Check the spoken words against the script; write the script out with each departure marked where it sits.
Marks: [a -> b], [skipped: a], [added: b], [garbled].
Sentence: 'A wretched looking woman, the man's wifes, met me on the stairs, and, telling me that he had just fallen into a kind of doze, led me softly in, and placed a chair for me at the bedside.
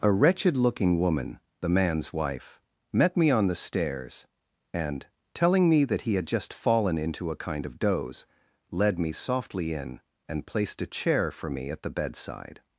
'A wretched looking woman, the man's [wifes, -> wife] met me on the stairs, and, telling me that he had just fallen into a kind of doze, led me softly in, and placed a chair for me at the bedside.